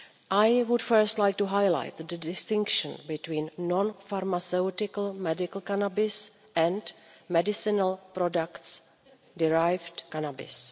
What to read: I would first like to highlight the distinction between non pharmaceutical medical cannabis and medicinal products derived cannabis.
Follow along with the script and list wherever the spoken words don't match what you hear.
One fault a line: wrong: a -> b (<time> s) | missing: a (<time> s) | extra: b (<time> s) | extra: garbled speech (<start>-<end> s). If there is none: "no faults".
no faults